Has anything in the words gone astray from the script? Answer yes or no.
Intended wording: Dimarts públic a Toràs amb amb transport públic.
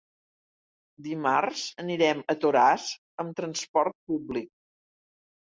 yes